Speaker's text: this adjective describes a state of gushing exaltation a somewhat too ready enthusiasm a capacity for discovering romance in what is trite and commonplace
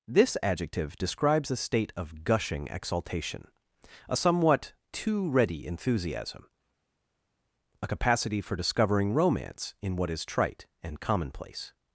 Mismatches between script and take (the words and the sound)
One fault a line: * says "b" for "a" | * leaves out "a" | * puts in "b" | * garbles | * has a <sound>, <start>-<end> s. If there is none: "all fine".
all fine